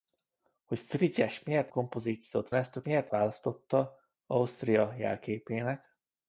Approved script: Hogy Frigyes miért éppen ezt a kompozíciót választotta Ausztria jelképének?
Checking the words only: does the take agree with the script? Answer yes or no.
no